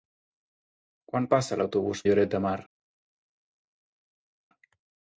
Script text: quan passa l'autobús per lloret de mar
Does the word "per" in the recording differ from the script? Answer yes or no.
yes